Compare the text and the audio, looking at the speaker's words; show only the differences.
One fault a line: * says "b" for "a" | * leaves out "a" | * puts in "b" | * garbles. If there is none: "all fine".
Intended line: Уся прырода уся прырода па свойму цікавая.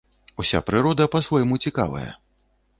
* leaves out "уся прырода"